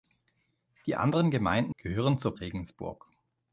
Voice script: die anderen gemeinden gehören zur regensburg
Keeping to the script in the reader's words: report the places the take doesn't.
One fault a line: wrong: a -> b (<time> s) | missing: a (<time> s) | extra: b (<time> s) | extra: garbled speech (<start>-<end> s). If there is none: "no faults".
no faults